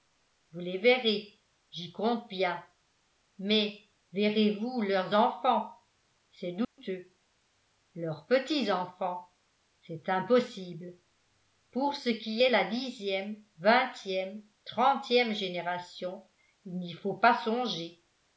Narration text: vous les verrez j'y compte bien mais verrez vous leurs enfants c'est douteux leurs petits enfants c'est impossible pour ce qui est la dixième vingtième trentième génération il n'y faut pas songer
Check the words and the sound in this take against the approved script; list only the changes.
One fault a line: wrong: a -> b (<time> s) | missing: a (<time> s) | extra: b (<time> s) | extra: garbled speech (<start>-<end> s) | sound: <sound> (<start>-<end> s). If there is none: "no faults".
sound: dropout (6.6-6.8 s)